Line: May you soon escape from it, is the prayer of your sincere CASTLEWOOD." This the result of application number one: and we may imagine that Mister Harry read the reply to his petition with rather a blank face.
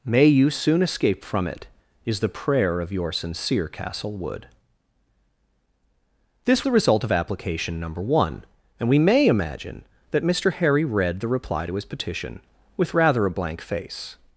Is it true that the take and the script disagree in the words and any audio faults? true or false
false